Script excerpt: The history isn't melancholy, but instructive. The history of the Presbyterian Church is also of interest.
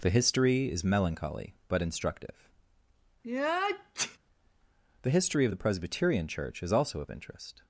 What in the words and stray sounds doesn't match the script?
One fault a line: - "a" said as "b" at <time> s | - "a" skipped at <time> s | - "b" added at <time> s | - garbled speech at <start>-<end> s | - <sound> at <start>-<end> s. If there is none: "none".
- "isn't" said as "is" at 0.7 s
- sneeze at 3.2-4.2 s